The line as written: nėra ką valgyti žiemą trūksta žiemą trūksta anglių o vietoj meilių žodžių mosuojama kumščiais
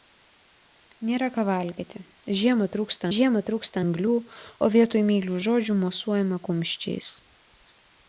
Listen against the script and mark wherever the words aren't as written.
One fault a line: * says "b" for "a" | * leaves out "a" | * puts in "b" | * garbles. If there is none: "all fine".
all fine